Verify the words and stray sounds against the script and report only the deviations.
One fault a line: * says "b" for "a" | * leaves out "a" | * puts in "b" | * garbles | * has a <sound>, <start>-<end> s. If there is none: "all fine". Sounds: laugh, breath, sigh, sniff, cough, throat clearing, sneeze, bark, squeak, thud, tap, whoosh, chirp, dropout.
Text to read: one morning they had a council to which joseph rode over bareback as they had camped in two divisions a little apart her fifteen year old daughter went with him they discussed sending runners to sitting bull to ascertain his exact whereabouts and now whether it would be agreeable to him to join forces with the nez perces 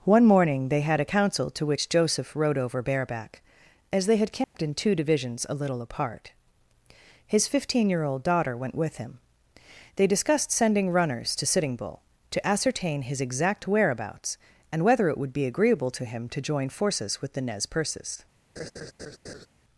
* has a dropout, 4.4-4.5 s
* says "his" for "her"
* leaves out "now"
* has a laugh, 18.6-19.5 s